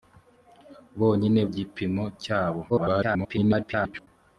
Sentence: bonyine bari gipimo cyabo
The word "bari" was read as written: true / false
false